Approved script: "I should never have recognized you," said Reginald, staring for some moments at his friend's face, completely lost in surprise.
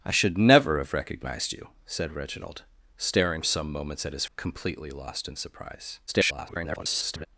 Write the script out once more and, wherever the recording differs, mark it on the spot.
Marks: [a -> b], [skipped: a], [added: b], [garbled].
"I should never have recognized you," said Reginald, staring [skipped: for] some moments at his [skipped: friend's face,] completely lost in surprise. [garbled]